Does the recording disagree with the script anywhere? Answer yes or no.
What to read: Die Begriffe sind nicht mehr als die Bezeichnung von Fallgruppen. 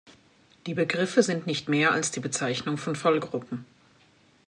no